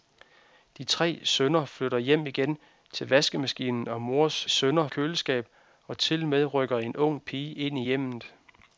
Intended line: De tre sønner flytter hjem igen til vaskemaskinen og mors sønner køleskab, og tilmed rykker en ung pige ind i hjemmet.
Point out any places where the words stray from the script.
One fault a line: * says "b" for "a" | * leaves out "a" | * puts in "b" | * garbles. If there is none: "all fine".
all fine